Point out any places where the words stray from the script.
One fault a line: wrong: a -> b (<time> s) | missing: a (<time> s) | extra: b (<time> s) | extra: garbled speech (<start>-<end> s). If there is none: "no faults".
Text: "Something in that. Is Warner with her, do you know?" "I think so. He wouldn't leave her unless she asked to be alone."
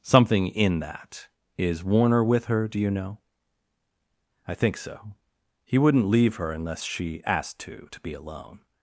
extra: to (7.9 s)